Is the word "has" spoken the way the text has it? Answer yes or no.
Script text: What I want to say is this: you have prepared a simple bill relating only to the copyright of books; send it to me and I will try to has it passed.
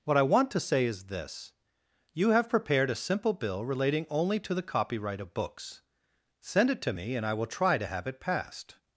no